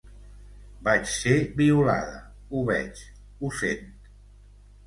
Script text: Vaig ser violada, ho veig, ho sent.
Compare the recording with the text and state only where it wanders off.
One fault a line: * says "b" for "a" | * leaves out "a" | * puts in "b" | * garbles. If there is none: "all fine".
all fine